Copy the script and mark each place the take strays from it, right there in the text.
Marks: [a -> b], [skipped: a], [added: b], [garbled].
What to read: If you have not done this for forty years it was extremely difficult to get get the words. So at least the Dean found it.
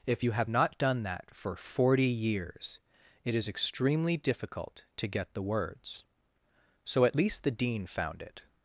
If you have not done [this -> that] for forty years it [was -> is] extremely difficult to get [skipped: get] the words. So at least the Dean found it.